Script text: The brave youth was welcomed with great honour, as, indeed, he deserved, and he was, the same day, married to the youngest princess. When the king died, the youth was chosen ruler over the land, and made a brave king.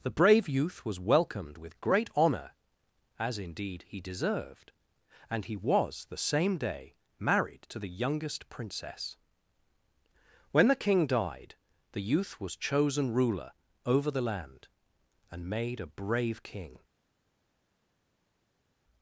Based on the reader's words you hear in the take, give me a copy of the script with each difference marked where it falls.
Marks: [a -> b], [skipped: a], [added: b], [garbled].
The brave youth was welcomed with great honour, as, indeed, he deserved, and he was, the same day, married to the youngest princess. When the king died, the youth was chosen ruler over the land, and made a brave king.